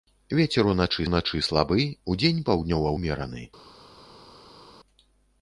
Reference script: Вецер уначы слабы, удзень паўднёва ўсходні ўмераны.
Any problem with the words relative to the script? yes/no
yes